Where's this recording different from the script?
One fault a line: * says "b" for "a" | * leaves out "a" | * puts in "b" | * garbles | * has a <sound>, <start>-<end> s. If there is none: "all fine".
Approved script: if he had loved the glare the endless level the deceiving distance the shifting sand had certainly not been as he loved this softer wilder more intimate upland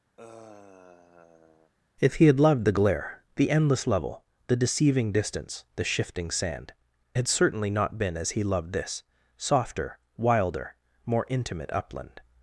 * has a sigh, 0.2-1.7 s